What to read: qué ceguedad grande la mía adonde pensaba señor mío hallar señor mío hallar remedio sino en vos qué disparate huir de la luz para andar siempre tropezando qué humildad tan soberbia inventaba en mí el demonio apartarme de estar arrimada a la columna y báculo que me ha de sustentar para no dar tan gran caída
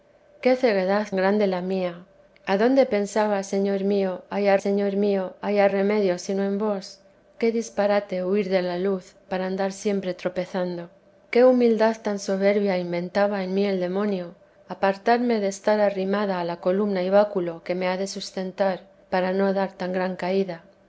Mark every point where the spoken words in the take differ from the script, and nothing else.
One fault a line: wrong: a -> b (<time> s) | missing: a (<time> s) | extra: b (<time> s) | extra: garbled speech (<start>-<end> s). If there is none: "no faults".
no faults